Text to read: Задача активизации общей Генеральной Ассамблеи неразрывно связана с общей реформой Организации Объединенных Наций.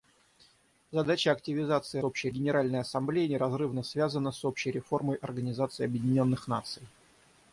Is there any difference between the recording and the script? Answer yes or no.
no